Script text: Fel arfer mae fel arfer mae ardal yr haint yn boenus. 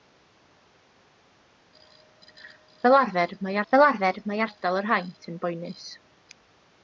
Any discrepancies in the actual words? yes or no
no